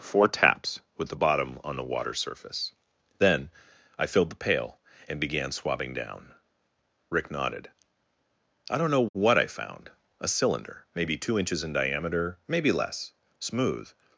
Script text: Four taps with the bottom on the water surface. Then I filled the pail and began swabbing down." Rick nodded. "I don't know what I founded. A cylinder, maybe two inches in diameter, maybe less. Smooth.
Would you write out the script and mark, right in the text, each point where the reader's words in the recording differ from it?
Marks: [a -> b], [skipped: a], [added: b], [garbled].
Four taps with the bottom on the water surface. Then I filled the pail and began swabbing down." Rick nodded. "I don't know what I [founded. -> found] A cylinder, maybe two inches in diameter, maybe less. Smooth.